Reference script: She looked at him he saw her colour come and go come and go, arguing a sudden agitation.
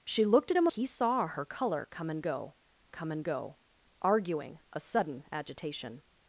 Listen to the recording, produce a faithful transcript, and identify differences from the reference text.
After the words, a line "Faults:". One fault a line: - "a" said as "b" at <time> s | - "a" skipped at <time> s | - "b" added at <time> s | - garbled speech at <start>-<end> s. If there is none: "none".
She looked at him he saw her colour come and go come and go, arguing a sudden agitation.
Faults:
none